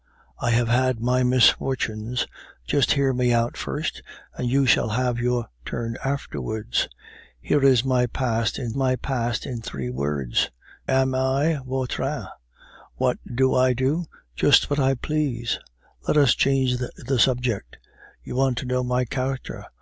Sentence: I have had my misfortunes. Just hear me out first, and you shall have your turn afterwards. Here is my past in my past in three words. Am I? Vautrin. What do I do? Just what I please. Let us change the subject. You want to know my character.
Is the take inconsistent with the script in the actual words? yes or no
no